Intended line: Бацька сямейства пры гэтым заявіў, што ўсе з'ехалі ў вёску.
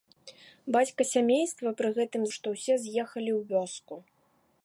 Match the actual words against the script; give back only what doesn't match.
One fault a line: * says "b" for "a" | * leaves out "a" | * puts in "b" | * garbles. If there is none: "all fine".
* leaves out "заявіў"